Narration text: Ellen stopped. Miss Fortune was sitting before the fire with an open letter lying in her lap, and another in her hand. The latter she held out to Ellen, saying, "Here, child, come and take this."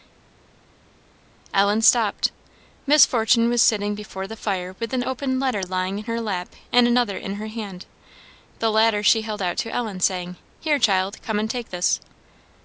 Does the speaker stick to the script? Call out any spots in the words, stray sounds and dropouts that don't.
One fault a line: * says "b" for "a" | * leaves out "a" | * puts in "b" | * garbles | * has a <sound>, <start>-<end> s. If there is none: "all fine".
all fine